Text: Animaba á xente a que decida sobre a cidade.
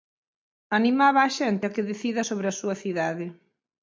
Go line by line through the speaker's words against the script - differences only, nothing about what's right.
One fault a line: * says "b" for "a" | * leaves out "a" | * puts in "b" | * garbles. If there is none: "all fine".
* puts in "súa"